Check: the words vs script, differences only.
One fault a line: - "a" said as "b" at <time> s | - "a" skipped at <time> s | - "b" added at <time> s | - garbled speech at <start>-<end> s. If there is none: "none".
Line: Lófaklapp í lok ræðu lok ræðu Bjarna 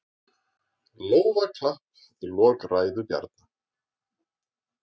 - "lok ræðu" skipped at 3.1 s